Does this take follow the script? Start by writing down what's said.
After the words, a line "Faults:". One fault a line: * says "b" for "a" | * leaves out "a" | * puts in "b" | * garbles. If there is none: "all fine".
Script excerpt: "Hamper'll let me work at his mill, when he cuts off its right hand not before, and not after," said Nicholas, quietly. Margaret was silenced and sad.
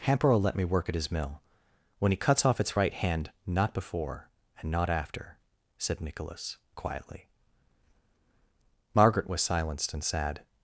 "Hamper'll let me work at his mill, when he cuts off its right hand not before, and not after," said Nicholas, quietly. Margaret was silenced and sad.
Faults:
all fine